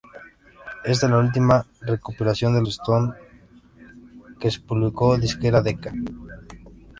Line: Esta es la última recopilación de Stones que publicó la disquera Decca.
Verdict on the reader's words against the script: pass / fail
pass